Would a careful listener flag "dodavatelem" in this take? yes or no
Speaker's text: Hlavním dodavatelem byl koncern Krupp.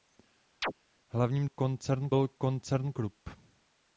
yes